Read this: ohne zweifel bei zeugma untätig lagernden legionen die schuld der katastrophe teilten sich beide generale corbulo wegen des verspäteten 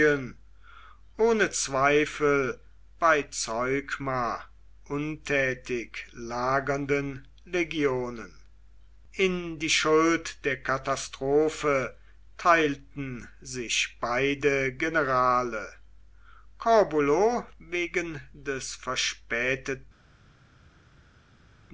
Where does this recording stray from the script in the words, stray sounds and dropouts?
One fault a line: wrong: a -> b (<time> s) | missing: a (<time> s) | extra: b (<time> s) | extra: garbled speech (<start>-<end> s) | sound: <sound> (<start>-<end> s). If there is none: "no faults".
extra: in (9.1 s)